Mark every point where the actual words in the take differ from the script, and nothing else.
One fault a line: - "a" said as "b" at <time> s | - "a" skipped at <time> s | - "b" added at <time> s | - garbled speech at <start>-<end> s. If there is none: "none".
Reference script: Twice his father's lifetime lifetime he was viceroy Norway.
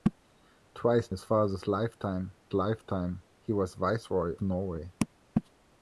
none